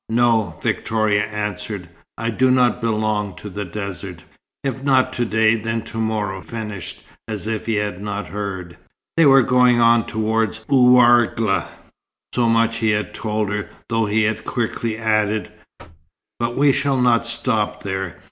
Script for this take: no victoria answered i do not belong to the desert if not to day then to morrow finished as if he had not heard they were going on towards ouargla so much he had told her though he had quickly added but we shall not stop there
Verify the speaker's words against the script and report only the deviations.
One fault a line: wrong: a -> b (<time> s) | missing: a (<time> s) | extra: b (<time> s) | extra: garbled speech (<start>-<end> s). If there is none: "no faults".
no faults